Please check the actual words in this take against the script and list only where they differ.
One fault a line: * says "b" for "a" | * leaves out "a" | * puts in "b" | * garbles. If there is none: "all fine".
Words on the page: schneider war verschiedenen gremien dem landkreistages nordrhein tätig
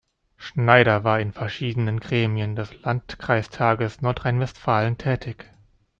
* puts in "in"
* says "des" for "dem"
* puts in "westfalen"